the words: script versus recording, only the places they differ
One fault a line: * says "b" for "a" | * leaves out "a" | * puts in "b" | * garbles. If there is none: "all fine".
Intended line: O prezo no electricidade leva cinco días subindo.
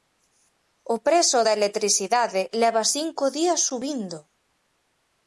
* says "da" for "no"